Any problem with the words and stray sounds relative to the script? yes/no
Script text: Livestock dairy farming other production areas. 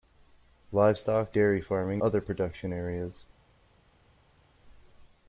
no